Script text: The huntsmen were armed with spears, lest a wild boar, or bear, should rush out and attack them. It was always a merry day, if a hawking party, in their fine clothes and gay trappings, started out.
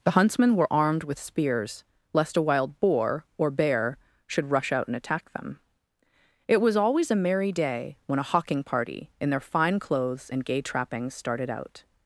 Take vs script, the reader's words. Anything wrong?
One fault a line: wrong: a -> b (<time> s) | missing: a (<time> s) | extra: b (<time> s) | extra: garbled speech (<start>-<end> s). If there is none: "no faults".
wrong: if -> when (8.1 s)